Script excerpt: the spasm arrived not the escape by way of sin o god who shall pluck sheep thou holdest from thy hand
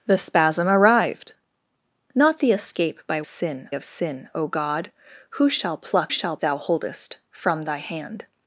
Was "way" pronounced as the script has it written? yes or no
no